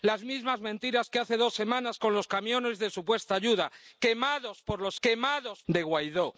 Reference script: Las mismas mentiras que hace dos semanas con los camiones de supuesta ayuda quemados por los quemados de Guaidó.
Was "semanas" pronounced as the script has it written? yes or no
yes